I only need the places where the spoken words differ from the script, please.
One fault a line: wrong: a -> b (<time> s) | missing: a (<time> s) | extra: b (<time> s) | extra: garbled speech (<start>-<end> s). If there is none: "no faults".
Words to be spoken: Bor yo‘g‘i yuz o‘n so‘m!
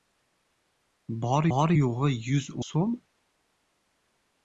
extra: bor (1.5 s)
missing: o‘n (2.5 s)